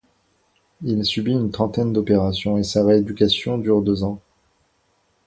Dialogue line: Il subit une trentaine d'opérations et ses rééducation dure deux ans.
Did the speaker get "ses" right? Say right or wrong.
wrong